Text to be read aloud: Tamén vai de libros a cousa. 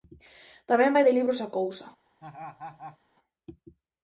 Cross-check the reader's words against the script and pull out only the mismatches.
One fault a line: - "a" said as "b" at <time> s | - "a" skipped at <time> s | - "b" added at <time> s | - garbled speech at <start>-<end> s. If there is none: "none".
none